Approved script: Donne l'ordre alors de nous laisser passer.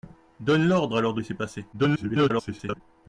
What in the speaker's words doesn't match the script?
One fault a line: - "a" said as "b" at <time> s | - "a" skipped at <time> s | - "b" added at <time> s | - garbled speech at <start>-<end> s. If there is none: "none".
- "nous" skipped at 1.2 s
- garbled speech at 1.7-2.8 s